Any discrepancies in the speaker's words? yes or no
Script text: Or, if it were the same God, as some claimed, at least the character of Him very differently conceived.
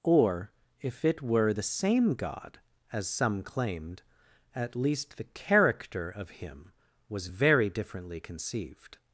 yes